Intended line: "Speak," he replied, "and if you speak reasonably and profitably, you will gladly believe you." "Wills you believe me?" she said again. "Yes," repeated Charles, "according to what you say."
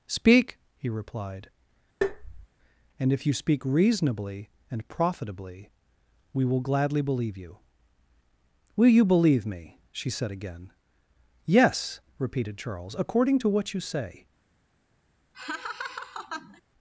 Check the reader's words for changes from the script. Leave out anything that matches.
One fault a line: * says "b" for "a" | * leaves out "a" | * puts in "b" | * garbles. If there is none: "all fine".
* says "we" for "you"
* says "Will" for "Wills"